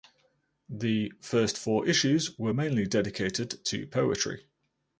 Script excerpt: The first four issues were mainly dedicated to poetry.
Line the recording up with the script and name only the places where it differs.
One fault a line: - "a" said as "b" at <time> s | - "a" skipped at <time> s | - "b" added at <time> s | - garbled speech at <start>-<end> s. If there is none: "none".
none